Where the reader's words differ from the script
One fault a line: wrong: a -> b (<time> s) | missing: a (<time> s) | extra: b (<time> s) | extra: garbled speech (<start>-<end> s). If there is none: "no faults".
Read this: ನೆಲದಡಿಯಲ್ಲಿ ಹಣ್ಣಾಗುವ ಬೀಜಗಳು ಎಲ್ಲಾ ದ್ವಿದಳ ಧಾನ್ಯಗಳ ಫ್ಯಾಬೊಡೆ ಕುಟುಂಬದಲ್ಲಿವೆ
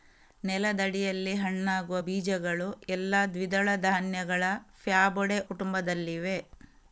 no faults